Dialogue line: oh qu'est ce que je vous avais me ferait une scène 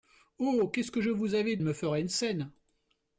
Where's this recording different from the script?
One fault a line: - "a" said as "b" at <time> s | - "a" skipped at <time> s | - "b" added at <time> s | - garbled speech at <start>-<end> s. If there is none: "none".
none